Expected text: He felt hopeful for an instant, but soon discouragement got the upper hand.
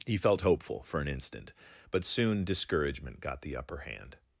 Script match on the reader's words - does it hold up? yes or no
yes